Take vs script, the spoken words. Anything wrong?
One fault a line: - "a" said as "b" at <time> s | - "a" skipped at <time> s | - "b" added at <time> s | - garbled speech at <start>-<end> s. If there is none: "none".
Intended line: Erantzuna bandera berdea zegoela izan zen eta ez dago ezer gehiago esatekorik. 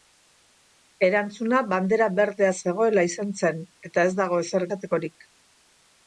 - "gehiago" skipped at 4.7 s